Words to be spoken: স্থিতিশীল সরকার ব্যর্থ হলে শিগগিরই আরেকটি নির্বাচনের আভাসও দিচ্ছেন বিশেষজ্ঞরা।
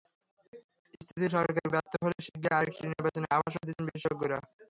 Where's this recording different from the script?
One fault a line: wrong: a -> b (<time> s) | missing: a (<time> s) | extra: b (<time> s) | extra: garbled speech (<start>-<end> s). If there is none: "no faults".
no faults